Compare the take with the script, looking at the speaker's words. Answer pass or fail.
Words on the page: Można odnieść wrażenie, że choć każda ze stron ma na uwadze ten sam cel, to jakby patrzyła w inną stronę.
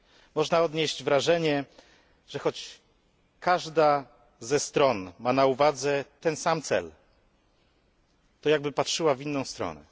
pass